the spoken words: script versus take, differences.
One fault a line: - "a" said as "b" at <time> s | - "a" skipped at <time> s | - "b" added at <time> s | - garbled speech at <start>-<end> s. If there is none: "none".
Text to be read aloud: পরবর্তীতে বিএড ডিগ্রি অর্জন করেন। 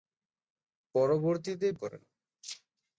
- "বিএড ডিগ্রি অর্জন" skipped at 1.7 s